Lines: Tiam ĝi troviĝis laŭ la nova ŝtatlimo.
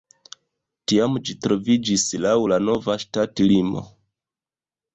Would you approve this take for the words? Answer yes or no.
yes